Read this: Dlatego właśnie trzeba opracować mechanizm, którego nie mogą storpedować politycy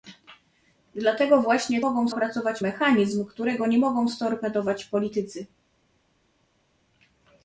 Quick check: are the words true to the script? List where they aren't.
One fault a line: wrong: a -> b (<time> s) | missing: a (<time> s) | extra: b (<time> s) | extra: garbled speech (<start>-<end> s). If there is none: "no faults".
wrong: trzeba -> mogą (1.8 s)